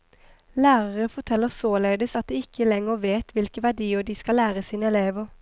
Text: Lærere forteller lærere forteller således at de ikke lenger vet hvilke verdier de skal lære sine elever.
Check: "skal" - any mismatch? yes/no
no